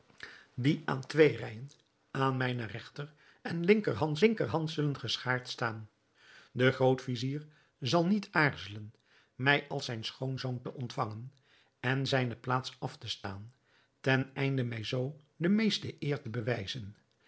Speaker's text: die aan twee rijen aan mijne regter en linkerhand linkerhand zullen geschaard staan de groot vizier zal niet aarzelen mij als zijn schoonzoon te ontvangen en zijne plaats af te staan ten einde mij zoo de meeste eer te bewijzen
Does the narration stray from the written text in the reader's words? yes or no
no